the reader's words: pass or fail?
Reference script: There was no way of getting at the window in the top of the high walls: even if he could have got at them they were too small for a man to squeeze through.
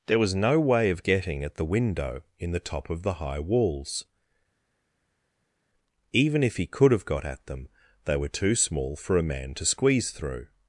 pass